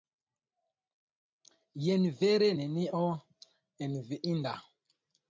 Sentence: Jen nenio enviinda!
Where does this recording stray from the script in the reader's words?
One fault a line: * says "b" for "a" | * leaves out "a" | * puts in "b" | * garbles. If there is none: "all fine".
* puts in "vere"